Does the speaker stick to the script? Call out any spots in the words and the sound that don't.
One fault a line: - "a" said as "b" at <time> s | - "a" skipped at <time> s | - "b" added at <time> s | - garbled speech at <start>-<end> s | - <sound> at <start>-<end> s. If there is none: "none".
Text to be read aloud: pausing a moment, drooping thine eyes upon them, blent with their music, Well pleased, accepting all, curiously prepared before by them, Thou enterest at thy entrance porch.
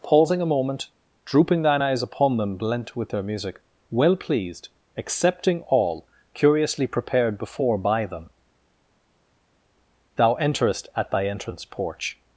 none